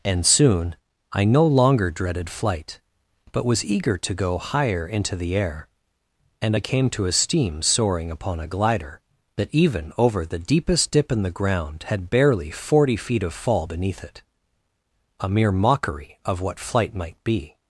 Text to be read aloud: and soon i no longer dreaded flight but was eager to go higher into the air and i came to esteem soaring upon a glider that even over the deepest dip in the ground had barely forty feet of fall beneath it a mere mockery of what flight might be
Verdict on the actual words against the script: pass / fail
pass